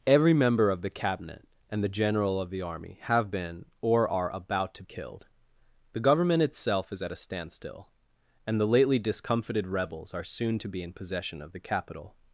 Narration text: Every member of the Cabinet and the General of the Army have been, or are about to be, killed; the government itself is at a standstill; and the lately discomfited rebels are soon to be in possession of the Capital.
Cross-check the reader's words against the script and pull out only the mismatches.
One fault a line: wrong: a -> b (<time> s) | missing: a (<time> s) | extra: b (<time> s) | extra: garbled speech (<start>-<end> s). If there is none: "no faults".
missing: be (4.8 s)